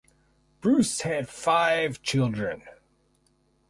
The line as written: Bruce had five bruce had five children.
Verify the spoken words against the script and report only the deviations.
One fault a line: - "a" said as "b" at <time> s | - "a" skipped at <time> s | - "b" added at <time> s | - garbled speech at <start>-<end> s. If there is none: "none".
- "bruce had five" skipped at 2.0 s